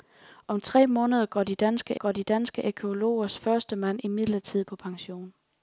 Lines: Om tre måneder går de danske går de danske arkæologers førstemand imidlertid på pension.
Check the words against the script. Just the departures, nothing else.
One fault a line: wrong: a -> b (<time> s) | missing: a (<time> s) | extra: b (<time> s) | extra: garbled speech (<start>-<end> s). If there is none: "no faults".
no faults